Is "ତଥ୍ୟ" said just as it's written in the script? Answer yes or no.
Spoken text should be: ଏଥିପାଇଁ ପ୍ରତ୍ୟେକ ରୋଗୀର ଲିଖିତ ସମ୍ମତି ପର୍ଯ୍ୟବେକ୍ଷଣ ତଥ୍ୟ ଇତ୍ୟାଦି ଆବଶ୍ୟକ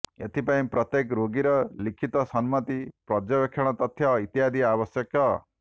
yes